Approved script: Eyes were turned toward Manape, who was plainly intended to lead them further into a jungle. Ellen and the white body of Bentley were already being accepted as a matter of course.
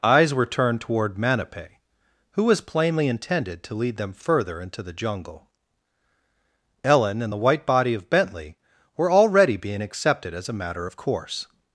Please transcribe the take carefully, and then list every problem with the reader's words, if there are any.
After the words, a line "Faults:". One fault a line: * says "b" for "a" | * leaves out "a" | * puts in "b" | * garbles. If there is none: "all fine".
Eyes were turned toward Manape, who was plainly intended to lead them further into the jungle. Ellen and the white body of Bentley were already being accepted as a matter of course.
Faults:
* says "the" for "a"